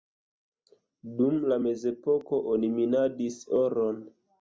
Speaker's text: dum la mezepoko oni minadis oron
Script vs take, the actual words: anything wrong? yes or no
no